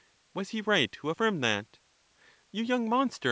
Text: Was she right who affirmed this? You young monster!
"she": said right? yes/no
no